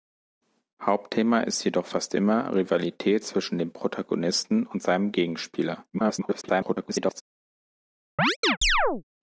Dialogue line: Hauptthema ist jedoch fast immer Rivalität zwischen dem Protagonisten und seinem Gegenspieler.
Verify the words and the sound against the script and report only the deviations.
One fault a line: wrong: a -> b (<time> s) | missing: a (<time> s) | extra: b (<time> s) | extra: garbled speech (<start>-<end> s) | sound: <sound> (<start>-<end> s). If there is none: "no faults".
extra: garbled speech (5.9-7.2 s)
sound: chirp (8.2-9.0 s)